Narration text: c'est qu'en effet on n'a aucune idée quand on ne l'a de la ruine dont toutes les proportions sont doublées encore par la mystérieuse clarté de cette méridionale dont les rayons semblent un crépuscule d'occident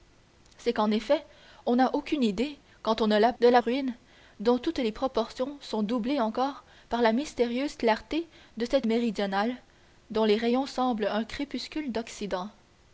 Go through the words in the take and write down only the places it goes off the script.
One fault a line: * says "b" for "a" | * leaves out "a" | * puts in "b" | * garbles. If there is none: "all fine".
all fine